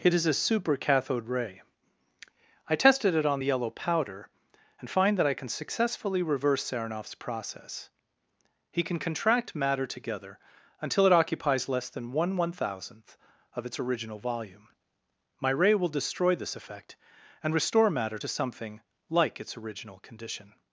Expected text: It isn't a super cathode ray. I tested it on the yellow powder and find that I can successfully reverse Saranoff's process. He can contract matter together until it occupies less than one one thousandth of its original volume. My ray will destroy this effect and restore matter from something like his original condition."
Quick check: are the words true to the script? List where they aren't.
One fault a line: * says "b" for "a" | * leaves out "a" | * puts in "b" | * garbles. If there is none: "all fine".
* says "is" for "isn't"
* says "to" for "from"
* says "its" for "his"